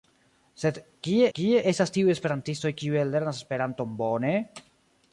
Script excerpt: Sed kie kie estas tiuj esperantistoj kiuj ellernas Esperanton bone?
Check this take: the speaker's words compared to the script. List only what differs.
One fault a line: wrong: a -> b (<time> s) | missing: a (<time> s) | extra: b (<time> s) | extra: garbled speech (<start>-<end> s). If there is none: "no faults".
no faults